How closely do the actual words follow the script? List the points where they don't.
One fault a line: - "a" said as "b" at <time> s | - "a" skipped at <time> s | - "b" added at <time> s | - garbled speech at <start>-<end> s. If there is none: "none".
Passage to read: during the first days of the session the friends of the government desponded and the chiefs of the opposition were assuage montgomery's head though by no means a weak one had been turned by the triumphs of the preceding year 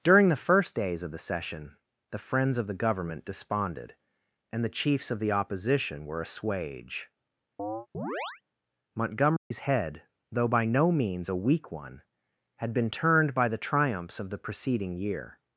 none